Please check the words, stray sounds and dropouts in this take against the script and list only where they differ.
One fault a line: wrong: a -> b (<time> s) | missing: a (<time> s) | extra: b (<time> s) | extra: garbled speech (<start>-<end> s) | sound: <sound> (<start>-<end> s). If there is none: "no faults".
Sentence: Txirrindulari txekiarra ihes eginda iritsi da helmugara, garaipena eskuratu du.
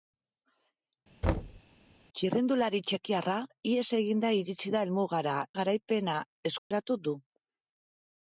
sound: thud (1.2-1.6 s)
sound: dropout (6.6-6.7 s)